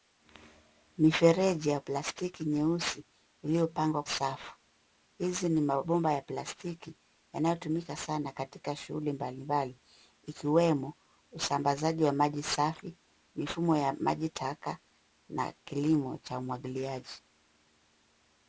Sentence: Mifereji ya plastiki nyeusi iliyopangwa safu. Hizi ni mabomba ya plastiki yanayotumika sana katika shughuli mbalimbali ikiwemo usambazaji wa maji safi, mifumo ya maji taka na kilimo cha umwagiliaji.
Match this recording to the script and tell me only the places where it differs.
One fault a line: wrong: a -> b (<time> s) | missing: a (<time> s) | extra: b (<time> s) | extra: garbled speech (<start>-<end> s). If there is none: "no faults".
no faults